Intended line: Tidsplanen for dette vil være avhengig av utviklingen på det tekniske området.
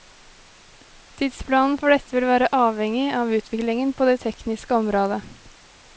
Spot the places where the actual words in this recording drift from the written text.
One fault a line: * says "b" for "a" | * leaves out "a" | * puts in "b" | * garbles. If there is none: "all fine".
all fine